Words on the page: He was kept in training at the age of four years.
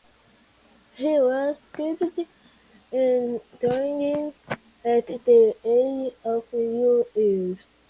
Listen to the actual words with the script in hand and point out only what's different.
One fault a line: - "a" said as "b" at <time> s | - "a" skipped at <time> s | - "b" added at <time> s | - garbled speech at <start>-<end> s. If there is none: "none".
none